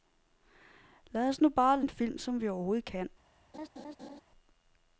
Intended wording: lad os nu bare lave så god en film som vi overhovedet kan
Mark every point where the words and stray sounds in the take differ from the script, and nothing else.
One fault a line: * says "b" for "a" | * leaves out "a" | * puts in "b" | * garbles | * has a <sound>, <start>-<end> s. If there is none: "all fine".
* leaves out "lave så god"
* has a laugh, 3.5-4.2 s